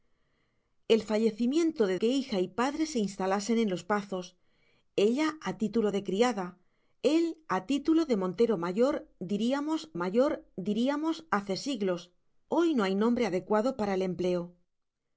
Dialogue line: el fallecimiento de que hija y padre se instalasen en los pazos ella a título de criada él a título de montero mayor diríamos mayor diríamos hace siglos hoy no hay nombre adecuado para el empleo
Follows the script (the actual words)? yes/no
yes